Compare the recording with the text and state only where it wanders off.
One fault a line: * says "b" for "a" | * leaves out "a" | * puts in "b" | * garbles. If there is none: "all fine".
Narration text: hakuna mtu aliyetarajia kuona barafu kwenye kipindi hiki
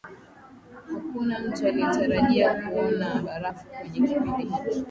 all fine